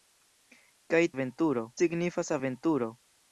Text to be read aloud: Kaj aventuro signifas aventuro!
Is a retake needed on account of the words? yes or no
no